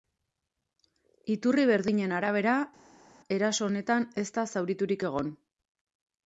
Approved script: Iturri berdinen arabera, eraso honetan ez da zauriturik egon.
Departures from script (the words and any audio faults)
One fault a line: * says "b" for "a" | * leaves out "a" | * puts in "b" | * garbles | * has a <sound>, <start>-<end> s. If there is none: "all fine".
all fine